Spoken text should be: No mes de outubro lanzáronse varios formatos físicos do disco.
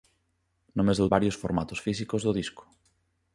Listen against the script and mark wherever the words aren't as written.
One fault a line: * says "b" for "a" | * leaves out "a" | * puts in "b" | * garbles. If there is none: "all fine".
* leaves out "outubro lanzáronse"